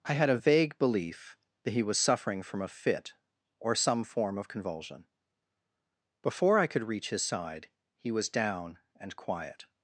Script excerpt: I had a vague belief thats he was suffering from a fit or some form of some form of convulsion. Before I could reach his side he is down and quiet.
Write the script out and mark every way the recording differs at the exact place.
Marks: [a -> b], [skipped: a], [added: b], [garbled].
I had a vague belief [thats -> that] he was suffering from a fit or some form of [skipped: some form of] convulsion. Before I could reach his side he [is -> was] down and quiet.